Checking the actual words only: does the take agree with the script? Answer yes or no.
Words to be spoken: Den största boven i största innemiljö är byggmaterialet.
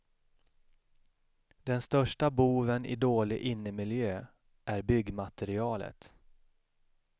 no